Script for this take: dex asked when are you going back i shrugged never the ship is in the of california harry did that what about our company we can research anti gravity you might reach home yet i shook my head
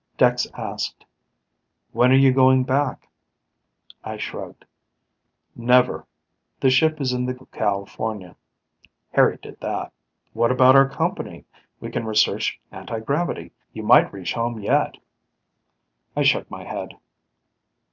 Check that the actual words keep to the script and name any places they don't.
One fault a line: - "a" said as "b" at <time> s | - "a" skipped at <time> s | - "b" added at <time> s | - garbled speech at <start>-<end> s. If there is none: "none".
none